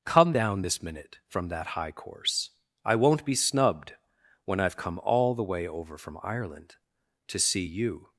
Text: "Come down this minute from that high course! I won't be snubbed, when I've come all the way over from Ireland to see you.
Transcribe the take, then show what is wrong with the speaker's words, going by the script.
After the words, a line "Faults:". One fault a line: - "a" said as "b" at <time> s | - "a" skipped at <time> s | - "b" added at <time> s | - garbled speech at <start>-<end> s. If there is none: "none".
"Come down this minute from that high course! I won't be snubbed, when I've come all the way over from Ireland to see you.
Faults:
none